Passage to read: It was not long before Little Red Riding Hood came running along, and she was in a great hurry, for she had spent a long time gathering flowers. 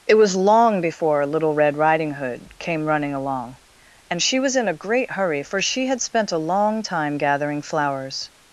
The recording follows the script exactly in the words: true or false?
false